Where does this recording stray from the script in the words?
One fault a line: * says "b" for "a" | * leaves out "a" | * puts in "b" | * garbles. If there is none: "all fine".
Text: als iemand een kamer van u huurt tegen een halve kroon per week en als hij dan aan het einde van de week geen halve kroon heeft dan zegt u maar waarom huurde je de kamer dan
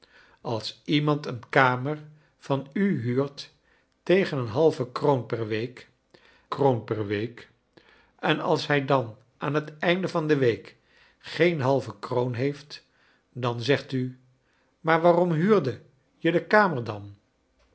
* puts in "kroon per week"